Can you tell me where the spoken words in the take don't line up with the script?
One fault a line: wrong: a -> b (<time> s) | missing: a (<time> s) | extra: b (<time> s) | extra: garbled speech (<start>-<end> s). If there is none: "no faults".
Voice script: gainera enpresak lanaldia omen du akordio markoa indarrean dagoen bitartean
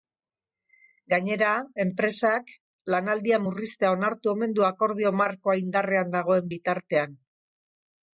extra: murriztea onartu (3.4 s)